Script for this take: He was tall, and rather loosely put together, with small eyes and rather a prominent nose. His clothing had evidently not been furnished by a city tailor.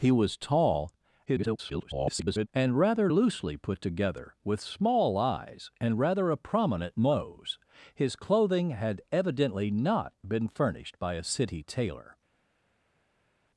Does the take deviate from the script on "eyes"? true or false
false